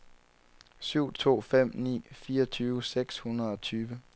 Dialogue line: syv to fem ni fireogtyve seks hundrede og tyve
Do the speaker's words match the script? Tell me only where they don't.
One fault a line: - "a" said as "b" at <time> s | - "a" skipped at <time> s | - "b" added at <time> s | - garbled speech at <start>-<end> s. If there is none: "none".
none